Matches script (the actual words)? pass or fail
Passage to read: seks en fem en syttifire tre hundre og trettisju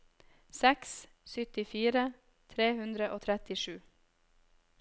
fail